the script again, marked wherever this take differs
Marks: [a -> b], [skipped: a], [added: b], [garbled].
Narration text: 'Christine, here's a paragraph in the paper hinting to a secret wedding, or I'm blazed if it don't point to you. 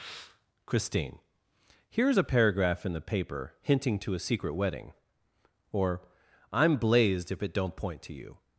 'Christine, here's a paragraph in the paper hinting to a secret wedding, or I'm blazed if it don't point to you.